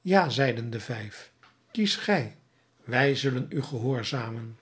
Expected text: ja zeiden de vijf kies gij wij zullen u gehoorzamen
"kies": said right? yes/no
yes